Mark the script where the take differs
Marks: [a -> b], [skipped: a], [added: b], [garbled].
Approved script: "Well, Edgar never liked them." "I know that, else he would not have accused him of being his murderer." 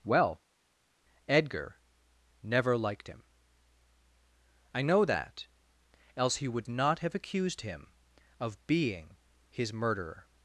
"Well, Edgar never liked [them." -> him] "I know that, else he would not have accused him of being his murderer."